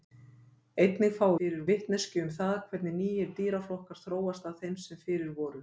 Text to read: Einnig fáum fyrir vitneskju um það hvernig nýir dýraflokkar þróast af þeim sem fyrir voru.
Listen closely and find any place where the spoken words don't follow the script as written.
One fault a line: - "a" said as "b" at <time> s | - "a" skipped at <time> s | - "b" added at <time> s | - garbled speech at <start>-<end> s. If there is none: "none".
none